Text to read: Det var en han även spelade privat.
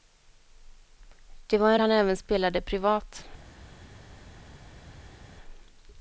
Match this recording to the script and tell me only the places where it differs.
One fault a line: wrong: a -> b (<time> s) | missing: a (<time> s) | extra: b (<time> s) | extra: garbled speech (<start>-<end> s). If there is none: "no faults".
no faults